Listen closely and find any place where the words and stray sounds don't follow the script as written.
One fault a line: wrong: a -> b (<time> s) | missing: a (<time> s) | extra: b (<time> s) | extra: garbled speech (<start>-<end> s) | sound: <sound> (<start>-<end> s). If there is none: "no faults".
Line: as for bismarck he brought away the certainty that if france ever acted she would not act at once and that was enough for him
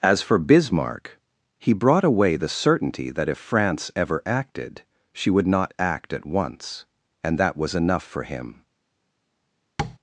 sound: tap (9.8-10.0 s)